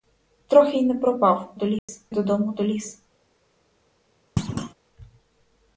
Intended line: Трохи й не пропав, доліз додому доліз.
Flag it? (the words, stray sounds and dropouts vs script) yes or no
yes